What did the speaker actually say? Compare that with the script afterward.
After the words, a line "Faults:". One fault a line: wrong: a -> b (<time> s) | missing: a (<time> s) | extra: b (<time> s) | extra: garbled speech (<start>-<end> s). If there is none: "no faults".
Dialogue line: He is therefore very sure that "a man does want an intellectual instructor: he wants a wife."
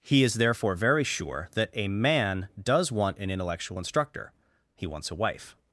He is therefore very sure that "a man does want an intellectual instructor: he wants a wife."
Faults:
no faults